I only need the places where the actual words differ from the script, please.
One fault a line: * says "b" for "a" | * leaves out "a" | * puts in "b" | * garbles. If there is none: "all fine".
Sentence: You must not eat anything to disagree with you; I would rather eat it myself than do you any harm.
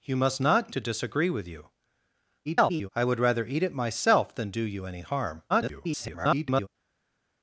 * leaves out "eat anything"
* garbles
* garbles